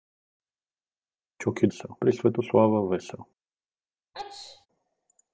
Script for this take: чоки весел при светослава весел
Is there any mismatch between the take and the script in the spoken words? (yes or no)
no